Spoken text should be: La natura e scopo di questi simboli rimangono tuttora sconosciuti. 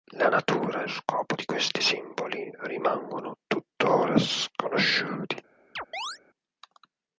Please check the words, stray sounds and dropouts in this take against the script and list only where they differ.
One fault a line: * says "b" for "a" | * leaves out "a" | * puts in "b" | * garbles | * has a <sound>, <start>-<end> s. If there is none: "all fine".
* has a chirp, 5.8-6.2 s